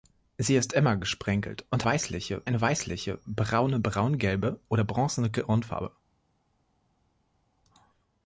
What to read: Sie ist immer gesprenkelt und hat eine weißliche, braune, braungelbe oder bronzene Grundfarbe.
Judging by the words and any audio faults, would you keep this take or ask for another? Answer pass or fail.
fail